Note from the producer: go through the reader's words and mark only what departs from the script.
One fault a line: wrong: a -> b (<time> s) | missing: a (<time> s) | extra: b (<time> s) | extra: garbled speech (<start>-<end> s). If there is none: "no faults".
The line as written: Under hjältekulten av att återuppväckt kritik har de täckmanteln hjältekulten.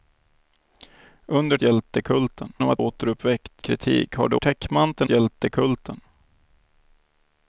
no faults